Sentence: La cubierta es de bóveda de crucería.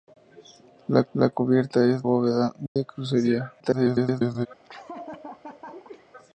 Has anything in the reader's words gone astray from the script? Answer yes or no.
yes